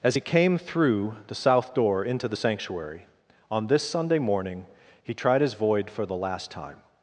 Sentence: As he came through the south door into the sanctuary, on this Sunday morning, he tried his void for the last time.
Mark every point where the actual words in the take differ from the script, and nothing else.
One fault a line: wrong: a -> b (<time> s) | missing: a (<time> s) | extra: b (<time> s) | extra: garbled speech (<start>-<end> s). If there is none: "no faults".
no faults